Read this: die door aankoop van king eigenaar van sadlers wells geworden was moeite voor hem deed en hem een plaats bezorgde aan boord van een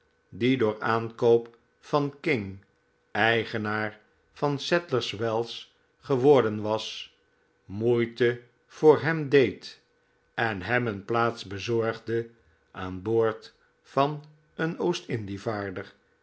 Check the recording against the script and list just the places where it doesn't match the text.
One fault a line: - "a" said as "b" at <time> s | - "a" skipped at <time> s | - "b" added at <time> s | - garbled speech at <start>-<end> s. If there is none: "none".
none